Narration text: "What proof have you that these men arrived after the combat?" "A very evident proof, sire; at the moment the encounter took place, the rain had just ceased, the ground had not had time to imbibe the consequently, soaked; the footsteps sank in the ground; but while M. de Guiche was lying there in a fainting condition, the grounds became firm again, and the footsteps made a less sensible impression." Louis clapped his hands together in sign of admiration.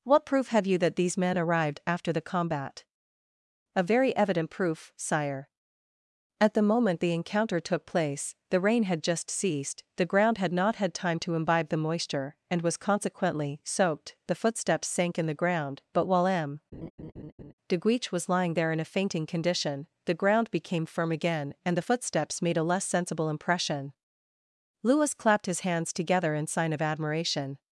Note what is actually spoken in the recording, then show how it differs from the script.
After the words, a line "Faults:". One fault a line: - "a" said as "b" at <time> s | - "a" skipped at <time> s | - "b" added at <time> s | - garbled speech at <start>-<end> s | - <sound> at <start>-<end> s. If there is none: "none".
"What proof have you that these men arrived after the combat?" "A very evident proof, sire; at the moment the encounter took place, the rain had just ceased, the ground had not had time to imbibe the moisture, and was, consequently, soaked; the footsteps sank in the ground; but while M. de Guiche was lying there in a fainting condition, the ground became firm again, and the footsteps made a less sensible impression." Louis clapped his hands together in sign of admiration.
Faults:
- "moisture and was" added at 11.8 s
- laugh at 16.7-17.5 s
- "grounds" said as "ground" at 20.1 s